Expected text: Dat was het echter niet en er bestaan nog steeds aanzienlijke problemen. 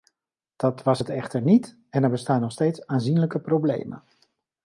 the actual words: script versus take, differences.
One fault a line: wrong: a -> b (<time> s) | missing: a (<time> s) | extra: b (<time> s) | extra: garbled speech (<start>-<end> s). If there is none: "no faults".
no faults